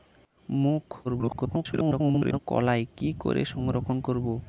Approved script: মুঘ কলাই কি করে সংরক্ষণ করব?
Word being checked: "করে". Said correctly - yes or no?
yes